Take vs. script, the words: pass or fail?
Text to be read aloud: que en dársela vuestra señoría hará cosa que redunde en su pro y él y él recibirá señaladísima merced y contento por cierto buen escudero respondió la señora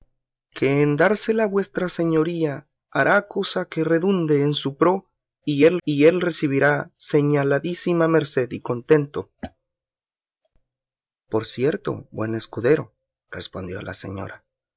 pass